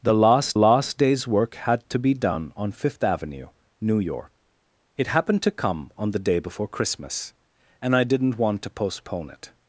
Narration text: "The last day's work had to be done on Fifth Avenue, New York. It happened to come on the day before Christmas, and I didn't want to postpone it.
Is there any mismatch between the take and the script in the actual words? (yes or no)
yes